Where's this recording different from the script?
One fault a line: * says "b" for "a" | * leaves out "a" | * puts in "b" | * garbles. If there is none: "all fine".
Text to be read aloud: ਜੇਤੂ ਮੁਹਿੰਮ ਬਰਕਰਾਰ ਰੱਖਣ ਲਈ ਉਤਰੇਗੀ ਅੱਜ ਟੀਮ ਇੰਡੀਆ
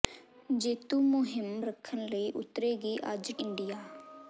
* leaves out "ਬਰਕਰਾਰ"
* leaves out "ਟੀਮ"